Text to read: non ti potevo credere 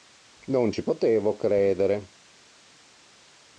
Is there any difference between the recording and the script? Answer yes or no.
yes